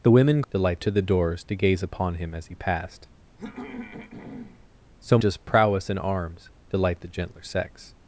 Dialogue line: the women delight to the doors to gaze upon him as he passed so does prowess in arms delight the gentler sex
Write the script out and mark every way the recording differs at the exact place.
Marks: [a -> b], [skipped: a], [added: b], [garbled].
the women delight to the doors to gaze upon him as he passed so does prowess in arms delight the gentler sex